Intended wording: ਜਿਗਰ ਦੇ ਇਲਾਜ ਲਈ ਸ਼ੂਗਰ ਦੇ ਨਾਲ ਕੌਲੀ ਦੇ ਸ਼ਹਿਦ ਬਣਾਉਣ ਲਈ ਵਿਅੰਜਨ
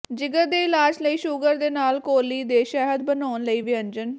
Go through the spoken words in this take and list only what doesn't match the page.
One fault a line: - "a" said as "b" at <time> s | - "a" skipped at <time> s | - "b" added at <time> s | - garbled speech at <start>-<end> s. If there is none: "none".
none